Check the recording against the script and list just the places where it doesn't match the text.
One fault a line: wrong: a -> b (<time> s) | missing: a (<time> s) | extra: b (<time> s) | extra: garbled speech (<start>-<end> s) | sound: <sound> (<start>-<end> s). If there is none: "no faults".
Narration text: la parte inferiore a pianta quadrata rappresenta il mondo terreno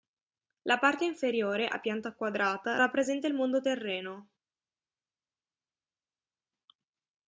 no faults